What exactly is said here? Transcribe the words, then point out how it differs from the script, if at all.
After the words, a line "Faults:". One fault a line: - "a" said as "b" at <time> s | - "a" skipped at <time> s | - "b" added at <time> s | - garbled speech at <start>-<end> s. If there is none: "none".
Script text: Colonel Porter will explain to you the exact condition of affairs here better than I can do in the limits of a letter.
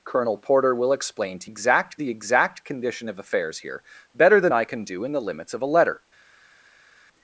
Colonel Porter will explain to exact the exact condition of affairs here better than I can do in the limits of a letter.
Faults:
- "you" said as "exact" at 1.4 s